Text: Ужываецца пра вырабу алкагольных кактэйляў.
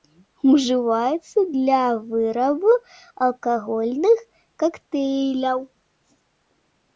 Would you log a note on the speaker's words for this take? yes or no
yes